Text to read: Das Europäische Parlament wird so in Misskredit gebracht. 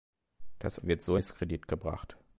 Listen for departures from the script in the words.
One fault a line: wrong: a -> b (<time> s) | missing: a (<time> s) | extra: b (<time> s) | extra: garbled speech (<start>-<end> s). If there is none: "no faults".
missing: Europäische Parlament (0.8 s)
missing: in (1.2 s)